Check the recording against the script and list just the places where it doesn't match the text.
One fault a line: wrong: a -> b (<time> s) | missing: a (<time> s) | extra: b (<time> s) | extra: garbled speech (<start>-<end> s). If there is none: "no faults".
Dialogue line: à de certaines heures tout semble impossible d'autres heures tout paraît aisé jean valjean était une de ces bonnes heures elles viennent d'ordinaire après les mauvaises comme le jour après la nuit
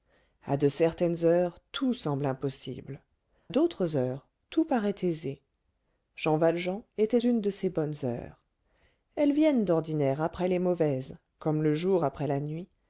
no faults